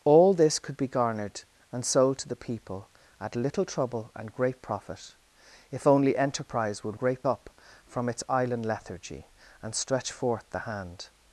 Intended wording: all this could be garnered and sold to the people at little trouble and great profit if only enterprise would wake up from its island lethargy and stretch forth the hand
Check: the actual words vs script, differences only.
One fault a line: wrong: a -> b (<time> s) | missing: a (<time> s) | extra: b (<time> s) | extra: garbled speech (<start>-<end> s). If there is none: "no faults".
wrong: wake -> great (7.0 s)